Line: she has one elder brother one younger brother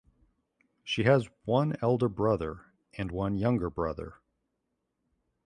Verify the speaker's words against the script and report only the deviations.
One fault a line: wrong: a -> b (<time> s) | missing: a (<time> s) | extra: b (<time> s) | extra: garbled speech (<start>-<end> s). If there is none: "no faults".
extra: and (2.9 s)